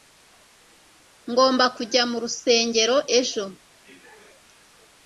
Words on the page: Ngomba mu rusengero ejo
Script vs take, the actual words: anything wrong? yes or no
yes